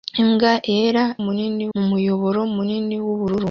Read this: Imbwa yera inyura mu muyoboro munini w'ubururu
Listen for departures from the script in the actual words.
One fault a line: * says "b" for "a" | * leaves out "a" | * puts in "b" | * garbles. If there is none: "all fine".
* says "munini" for "inyura"